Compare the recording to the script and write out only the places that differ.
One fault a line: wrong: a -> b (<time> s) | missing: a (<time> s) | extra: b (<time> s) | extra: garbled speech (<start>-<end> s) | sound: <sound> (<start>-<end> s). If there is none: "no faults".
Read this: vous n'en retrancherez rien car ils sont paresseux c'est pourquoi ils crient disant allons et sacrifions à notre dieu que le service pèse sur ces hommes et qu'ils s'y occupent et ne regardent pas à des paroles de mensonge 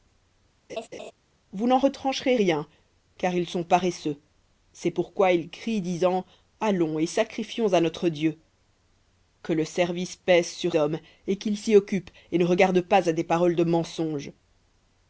sound: laugh (0.7-1.1 s)
missing: ces (10.7 s)